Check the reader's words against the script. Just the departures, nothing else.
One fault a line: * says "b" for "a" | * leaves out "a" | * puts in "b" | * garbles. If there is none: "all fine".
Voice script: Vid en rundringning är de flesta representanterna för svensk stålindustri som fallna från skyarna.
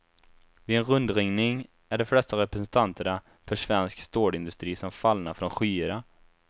all fine